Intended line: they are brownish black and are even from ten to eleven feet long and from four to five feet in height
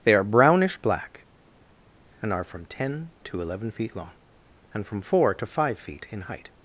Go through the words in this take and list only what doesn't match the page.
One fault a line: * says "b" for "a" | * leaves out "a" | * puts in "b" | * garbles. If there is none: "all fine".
* leaves out "even"